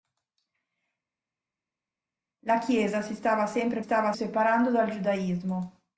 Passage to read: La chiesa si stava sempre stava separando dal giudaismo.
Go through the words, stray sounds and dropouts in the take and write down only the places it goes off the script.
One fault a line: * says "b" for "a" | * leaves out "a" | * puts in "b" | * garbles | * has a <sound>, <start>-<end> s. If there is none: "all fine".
all fine